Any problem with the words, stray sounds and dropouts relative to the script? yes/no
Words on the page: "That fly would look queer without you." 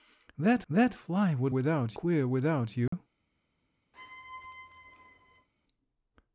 yes